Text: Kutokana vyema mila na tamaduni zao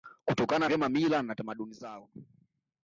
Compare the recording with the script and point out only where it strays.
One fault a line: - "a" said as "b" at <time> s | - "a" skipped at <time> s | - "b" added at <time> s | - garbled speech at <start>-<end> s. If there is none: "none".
none